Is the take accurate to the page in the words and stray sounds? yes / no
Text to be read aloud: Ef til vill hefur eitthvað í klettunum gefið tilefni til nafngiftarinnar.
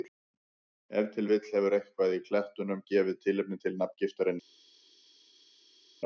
yes